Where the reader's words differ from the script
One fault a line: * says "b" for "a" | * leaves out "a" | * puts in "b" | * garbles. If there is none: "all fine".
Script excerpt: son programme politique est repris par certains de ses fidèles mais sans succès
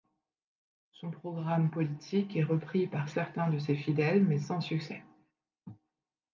all fine